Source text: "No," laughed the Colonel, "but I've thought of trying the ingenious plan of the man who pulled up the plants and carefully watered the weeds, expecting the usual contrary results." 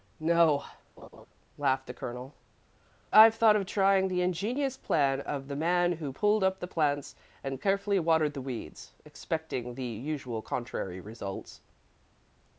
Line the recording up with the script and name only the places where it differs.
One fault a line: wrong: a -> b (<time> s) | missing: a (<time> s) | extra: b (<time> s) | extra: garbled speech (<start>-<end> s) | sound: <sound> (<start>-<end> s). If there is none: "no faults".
sound: laugh (1.0-1.3 s)
missing: but (2.3 s)